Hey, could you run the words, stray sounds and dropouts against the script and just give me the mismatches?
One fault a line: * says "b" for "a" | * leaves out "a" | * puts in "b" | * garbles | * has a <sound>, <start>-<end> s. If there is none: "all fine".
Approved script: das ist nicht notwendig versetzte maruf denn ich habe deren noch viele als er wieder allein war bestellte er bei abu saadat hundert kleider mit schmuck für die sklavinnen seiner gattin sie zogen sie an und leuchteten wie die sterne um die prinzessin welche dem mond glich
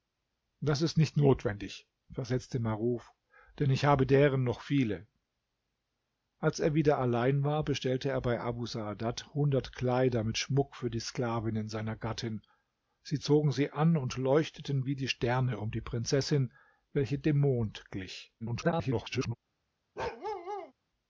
* garbles
* has a bark, 20.0-20.7 s